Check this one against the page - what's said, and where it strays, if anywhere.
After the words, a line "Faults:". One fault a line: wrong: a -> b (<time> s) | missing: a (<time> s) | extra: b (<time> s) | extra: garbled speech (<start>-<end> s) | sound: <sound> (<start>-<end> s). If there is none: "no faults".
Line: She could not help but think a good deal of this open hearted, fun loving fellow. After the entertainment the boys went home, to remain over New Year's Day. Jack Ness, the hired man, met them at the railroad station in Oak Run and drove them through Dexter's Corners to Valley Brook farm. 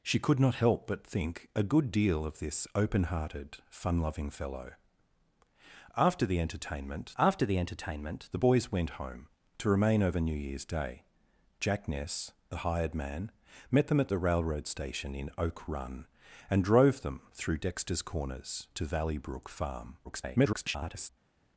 She could not help but think a good deal of this open hearted, fun loving fellow. After the entertainment after the entertainment the boys went home, to remain over New Year's Day. Jack Ness, the hired man, met them at the railroad station in Oak Run and drove them through Dexter's Corners to Valley Brook farm. [garbled]
Faults:
extra: after the entertainment (7.2 s)
extra: garbled speech (20.0-21.1 s)